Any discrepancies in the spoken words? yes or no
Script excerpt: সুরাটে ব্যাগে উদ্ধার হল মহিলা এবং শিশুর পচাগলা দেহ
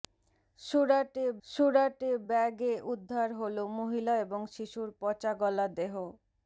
yes